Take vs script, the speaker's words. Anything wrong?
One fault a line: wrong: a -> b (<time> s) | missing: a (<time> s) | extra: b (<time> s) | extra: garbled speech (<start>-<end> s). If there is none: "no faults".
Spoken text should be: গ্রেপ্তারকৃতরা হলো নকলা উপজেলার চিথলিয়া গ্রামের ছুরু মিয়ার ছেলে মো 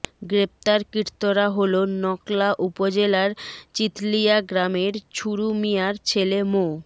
no faults